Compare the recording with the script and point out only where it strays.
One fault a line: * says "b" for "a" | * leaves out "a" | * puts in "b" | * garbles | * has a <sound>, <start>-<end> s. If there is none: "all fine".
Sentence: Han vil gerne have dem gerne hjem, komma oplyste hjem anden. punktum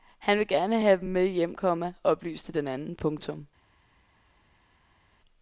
* says "med" for "gerne"
* says "den" for "hjem"